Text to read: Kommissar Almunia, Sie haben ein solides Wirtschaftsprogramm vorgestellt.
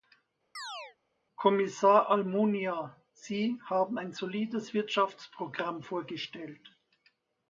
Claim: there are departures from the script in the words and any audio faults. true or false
true